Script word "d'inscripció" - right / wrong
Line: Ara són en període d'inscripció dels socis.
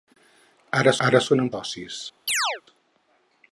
wrong